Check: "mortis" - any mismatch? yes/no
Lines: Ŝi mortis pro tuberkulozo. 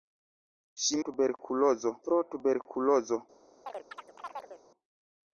yes